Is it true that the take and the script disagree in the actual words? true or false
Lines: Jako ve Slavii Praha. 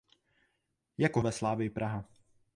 false